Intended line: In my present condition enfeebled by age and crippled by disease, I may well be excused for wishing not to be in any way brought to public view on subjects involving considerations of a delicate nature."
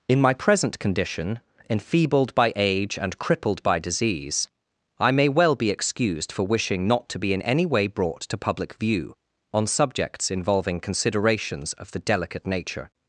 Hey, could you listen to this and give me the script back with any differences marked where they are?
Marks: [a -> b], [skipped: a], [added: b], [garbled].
In my present condition enfeebled by age and crippled by disease, I may well be excused for wishing not to be in any way brought to public view on subjects involving considerations of [a -> the] delicate nature."